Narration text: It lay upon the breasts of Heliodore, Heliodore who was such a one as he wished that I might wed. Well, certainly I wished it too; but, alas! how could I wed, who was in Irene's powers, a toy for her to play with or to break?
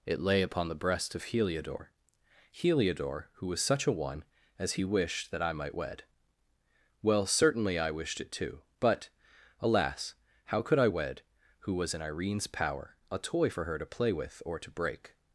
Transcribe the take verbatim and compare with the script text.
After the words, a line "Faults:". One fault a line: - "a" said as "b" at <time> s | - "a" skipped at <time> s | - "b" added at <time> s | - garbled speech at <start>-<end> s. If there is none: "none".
It lay upon the breast of Heliodore, Heliodore who was such a one as he wished that I might wed. Well, certainly I wished it too; but, alas! how could I wed, who was in Irene's power, a toy for her to play with or to break?
Faults:
- "breasts" said as "breast" at 0.8 s
- "powers" said as "power" at 12.5 s